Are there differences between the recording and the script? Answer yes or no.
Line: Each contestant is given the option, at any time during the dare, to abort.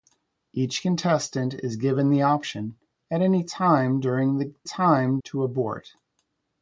yes